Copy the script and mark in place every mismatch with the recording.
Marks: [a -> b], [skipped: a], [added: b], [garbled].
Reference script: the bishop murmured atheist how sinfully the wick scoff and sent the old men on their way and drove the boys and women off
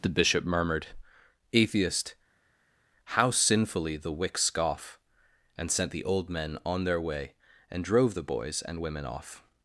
the bishop murmured atheist how sinfully the wick scoff and sent the old men on their way and drove the boys and women off